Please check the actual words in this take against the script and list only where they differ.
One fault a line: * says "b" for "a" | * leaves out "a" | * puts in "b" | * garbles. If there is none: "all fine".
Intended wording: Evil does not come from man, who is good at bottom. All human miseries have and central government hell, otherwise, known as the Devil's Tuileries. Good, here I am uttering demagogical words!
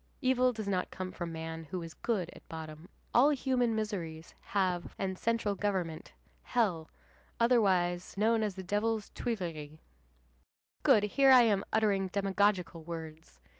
all fine